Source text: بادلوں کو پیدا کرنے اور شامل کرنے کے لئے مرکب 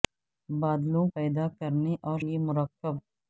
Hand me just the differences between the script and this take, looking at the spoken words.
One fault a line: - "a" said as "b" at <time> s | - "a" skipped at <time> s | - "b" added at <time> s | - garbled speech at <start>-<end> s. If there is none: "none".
- "کو" skipped at 1.1 s
- "شامل کرنے کے" skipped at 2.2 s